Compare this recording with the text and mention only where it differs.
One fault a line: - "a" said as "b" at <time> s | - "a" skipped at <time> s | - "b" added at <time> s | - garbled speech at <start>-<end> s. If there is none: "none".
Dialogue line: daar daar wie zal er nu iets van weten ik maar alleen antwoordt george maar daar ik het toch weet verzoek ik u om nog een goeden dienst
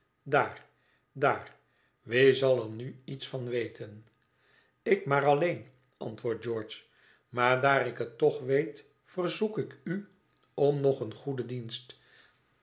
none